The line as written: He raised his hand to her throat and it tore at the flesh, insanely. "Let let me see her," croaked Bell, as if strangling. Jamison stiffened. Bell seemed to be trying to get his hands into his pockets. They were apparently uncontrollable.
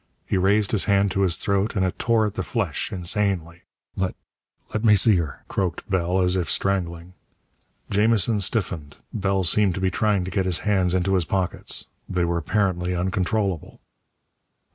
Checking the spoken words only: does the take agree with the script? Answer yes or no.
no